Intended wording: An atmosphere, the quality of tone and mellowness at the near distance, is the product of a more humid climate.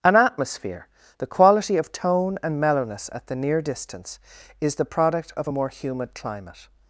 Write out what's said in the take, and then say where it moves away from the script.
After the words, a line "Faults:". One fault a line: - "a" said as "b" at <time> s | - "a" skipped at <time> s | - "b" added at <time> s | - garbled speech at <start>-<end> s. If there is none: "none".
An atmosphere, the quality of tone and mellowness at the near distance, is the product of a more humid climate.
Faults:
none